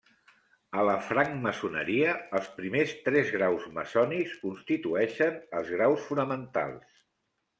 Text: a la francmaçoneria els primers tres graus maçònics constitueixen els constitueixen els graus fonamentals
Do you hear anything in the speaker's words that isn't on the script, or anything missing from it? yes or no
yes